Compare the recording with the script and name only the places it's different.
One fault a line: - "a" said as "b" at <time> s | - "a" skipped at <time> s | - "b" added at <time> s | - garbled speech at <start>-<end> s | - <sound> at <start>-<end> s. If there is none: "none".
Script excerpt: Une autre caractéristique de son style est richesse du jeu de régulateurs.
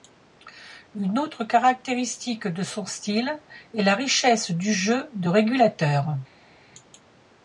- "la" added at 3.8 s